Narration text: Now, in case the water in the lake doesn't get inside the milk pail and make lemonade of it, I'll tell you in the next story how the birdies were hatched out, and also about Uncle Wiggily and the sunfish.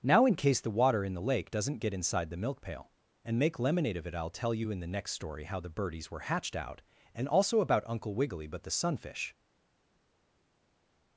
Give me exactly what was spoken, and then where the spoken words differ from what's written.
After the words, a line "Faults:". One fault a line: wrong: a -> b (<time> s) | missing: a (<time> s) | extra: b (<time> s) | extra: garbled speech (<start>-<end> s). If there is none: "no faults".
Now, in case the water in the lake doesn't get inside the milk pail and make lemonade of it, I'll tell you in the next story how the birdies were hatched out, and also about Uncle Wiggily but the sunfish.
Faults:
wrong: and -> but (8.5 s)